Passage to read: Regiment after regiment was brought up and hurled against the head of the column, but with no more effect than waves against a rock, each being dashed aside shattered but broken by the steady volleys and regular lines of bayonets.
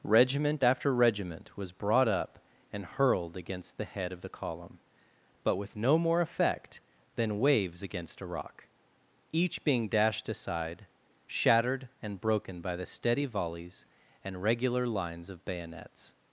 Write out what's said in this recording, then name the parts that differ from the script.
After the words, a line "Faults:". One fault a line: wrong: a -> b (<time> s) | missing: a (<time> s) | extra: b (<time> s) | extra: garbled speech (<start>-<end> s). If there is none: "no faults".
Regiment after regiment was brought up and hurled against the head of the column, but with no more effect than waves against a rock, each being dashed aside shattered and broken by the steady volleys and regular lines of bayonets.
Faults:
wrong: but -> and (12.0 s)